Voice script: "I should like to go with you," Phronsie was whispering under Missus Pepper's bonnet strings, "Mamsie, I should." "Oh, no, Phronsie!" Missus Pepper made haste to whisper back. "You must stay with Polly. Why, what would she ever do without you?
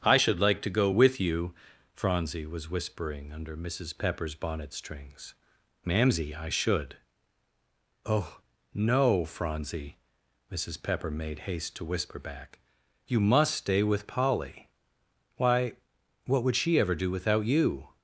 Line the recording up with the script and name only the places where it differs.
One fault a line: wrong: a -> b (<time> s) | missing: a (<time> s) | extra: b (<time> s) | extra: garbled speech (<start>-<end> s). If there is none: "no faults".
no faults